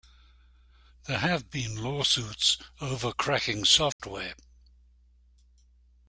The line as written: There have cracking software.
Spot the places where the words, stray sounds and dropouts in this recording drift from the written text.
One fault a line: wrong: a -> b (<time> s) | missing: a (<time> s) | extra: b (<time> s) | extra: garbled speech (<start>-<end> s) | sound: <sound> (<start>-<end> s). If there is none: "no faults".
extra: been lawsuits over (1.5 s)
sound: dropout (3.9-4.0 s)